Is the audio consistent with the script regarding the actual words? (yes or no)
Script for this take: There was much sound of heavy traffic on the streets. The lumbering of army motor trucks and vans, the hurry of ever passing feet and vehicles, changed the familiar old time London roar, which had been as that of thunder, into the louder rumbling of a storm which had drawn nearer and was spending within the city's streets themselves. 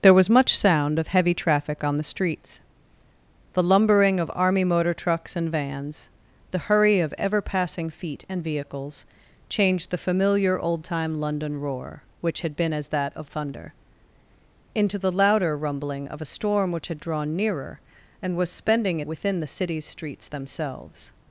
yes